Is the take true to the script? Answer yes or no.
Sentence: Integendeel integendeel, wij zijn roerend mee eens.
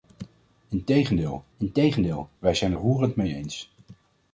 yes